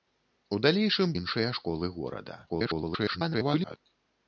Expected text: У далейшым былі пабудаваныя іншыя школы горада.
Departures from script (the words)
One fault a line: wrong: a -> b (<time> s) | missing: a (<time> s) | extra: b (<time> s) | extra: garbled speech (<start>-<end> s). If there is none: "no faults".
missing: былі пабудаваныя (1.1 s)
extra: garbled speech (2.5-3.8 s)